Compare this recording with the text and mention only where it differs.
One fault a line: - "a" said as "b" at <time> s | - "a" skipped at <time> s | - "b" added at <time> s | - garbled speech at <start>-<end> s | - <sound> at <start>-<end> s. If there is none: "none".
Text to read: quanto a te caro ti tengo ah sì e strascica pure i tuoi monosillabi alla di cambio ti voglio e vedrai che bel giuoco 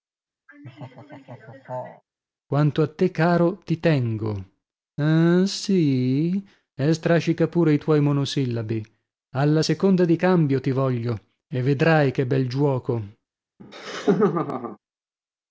- laugh at 0.5-2.0 s
- "seconda" added at 9.6 s
- laugh at 13.6-14.8 s